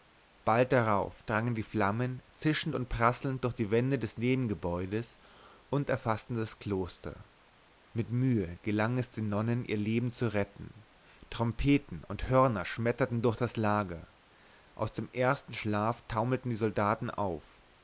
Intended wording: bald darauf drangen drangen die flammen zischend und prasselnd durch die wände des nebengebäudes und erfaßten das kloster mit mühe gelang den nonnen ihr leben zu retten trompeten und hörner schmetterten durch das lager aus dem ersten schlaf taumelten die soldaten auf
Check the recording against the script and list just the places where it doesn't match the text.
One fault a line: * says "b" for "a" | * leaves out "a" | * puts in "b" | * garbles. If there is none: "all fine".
* leaves out "drangen"
* puts in "es"